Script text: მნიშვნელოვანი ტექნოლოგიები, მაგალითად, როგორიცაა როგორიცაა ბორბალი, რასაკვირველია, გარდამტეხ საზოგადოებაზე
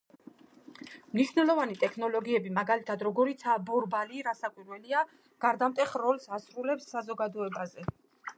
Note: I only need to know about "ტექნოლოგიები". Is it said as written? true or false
true